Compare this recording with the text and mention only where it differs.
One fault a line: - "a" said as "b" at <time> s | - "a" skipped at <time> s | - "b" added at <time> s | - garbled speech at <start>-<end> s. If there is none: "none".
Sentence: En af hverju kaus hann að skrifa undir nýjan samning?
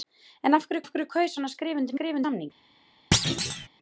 - "af hverju" added at 0.8 s
- "nýjan" said as "skrifa" at 1.9 s